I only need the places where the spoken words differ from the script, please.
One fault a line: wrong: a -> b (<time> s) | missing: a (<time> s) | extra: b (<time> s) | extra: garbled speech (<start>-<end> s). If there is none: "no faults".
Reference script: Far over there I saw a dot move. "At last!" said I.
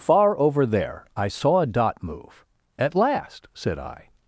no faults